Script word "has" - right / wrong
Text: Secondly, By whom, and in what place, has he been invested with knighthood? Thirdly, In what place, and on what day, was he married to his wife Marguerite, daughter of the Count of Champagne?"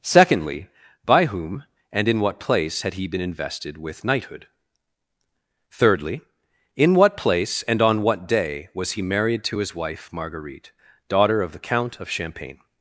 wrong